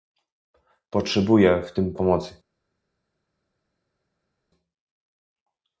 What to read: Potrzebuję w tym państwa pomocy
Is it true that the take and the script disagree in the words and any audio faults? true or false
true